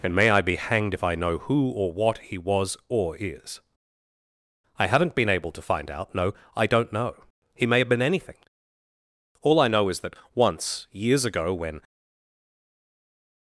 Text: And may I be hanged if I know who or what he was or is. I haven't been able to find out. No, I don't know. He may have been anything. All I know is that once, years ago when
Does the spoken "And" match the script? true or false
true